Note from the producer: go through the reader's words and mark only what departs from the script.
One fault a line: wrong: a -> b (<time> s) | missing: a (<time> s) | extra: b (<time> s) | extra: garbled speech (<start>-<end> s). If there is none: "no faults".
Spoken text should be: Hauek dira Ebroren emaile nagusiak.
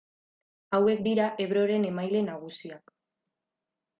no faults